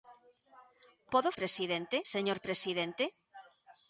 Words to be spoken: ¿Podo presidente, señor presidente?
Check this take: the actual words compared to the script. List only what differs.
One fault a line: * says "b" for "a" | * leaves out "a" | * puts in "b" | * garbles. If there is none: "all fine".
all fine